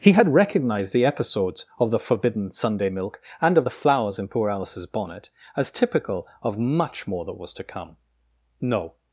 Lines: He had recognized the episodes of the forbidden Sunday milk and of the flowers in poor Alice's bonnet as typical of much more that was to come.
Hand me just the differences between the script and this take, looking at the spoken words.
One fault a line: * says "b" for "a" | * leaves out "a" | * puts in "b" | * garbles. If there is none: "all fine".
* puts in "No"